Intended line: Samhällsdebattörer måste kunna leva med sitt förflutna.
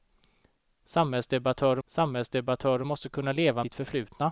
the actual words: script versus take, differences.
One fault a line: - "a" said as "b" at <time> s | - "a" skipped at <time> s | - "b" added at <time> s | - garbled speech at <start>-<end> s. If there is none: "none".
- "samhällsdebattörer" added at 1.9 s
- "med" skipped at 3.6 s